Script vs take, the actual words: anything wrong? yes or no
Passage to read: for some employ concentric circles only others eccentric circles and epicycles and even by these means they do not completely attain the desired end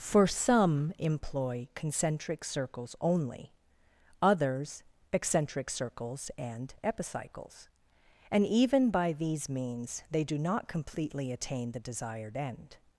no